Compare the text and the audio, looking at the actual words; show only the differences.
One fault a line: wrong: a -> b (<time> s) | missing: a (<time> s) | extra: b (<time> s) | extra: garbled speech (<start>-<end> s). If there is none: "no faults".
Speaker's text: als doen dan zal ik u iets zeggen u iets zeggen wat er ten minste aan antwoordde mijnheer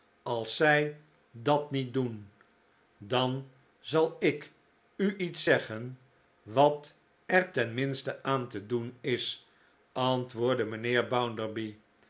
extra: zij dat niet (0.6 s)
missing: u iets zeggen (6.0 s)
extra: te doen is (8.5 s)